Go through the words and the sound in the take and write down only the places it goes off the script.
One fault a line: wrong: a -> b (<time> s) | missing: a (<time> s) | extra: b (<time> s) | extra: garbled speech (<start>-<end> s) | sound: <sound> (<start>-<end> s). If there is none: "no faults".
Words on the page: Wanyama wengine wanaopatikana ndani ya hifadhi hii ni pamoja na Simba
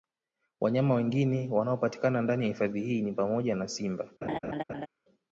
sound: laugh (4.2-4.9 s)